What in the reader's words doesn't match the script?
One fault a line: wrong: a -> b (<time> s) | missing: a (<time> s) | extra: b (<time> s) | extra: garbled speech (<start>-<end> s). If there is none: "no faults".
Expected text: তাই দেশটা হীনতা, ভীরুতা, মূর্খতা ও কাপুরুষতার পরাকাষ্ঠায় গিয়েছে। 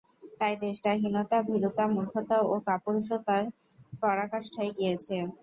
no faults